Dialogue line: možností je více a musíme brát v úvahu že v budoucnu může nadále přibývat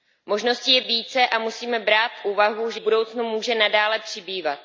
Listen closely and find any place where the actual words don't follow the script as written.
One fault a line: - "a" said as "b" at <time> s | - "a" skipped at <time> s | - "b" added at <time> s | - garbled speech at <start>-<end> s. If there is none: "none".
none